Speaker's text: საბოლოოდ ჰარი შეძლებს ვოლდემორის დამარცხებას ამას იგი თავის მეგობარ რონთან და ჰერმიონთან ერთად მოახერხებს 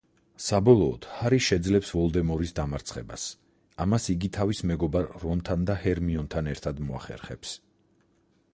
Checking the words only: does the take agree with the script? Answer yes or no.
yes